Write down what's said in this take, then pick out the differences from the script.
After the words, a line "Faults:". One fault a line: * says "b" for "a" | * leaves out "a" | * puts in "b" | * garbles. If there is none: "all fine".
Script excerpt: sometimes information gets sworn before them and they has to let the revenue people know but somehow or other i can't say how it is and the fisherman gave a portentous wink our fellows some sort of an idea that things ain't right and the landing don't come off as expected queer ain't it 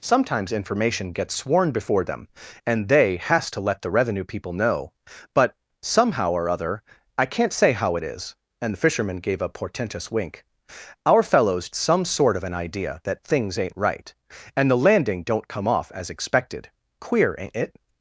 sometimes information gets sworn before them and they has to let the revenue people know but somehow or other i can't say how it is and the fisherman gave a portentous wink our fellows some sort of an idea that things ain't right and the landing don't come off as expected queer ain't it
Faults:
all fine